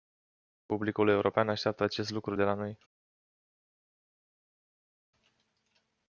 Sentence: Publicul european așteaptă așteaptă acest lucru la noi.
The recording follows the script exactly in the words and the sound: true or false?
false